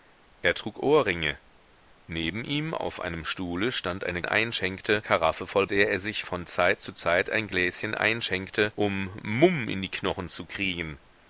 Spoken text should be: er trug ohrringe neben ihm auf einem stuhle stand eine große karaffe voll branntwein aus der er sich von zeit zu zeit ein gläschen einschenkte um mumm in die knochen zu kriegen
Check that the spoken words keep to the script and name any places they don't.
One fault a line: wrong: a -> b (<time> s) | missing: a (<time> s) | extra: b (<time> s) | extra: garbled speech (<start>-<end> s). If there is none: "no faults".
wrong: große -> einschenkte (4.2 s)
missing: branntwein aus (5.7 s)